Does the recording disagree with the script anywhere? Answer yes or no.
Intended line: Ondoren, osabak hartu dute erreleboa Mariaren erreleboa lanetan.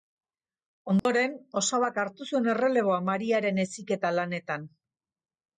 yes